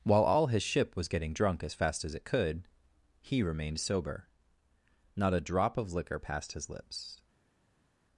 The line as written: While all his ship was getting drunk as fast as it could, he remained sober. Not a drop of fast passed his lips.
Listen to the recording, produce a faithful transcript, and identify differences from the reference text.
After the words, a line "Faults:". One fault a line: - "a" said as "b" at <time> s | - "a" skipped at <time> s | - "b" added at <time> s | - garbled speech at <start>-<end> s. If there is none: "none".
While all his ship was getting drunk as fast as it could, he remained sober. Not a drop of liquor passed his lips.
Faults:
- "fast" said as "liquor" at 5.9 s